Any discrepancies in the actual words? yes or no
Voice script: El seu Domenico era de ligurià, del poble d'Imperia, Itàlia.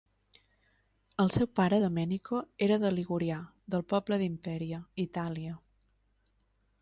yes